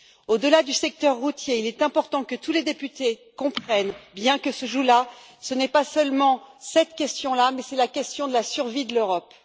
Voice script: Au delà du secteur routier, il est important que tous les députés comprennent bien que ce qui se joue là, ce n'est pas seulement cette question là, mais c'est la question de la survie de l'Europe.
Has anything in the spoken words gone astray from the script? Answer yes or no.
no